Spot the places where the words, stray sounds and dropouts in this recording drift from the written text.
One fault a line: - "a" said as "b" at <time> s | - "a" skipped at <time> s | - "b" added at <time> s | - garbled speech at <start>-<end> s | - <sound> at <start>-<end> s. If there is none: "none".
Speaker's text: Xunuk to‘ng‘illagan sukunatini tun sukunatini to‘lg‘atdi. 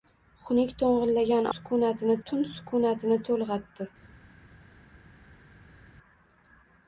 none